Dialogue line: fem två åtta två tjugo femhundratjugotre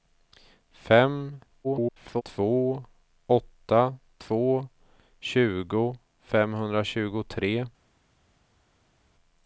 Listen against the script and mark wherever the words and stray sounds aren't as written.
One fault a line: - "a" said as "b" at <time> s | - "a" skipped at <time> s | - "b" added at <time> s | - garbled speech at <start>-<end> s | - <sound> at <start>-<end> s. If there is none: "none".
- garbled speech at 1.6-2.2 s